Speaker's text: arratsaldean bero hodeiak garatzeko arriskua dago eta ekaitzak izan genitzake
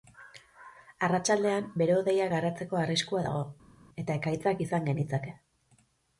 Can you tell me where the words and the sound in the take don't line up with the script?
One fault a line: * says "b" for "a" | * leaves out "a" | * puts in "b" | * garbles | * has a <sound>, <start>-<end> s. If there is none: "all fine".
all fine